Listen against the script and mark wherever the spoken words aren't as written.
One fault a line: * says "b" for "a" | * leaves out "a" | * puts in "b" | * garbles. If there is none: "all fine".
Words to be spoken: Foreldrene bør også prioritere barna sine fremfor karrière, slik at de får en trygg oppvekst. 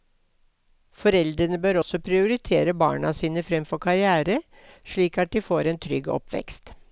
all fine